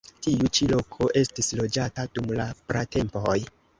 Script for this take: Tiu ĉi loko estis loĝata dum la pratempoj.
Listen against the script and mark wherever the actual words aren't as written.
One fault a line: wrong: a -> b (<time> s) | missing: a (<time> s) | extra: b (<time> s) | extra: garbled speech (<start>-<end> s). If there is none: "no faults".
no faults